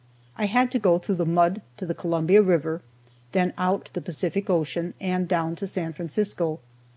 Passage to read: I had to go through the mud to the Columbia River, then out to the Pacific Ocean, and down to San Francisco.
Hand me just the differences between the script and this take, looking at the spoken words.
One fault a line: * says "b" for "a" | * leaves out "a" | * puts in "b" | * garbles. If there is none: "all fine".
all fine